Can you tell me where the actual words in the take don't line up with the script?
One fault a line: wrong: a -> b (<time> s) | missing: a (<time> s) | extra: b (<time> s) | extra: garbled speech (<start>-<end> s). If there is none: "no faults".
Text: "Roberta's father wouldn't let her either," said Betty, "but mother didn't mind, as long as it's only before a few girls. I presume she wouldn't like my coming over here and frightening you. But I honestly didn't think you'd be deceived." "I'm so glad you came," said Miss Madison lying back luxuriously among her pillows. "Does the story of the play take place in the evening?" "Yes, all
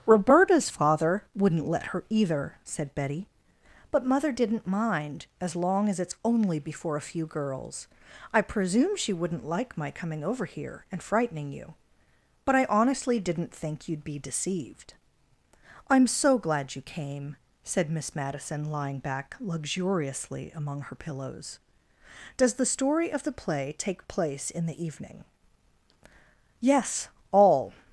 no faults